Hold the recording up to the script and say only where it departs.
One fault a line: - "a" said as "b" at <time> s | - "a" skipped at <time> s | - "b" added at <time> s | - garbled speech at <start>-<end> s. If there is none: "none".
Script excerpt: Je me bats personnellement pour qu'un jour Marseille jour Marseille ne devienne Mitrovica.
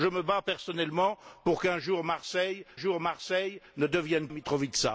none